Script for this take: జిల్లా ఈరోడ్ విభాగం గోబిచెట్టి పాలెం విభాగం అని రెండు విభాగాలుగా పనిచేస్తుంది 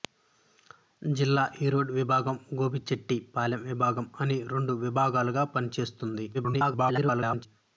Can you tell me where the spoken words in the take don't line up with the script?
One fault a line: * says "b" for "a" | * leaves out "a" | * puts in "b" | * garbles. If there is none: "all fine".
* garbles